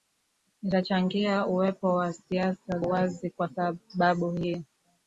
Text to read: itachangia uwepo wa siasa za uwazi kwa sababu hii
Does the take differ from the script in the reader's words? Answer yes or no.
yes